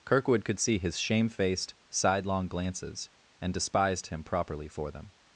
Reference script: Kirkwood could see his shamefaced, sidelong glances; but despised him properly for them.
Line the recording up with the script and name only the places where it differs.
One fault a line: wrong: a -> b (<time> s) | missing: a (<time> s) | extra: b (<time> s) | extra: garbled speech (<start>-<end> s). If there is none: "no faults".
wrong: but -> and (3.4 s)